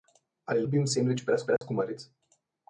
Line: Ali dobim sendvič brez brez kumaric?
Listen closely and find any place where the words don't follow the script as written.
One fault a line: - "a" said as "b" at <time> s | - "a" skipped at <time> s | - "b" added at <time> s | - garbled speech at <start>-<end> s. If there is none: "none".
none